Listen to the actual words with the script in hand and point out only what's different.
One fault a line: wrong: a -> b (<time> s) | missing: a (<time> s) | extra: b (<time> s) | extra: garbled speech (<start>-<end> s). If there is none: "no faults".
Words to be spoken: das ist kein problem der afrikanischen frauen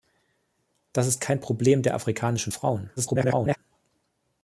extra: garbled speech (3.0-3.6 s)